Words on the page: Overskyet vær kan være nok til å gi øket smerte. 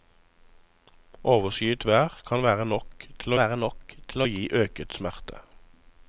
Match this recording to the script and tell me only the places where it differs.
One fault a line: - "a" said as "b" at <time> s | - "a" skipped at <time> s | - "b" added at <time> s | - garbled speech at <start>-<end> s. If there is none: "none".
- "være nok til" added at 3.4 s